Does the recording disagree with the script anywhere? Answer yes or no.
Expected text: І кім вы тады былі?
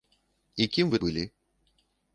yes